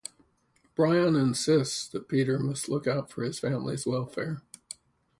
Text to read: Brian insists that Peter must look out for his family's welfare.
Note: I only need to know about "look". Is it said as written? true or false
true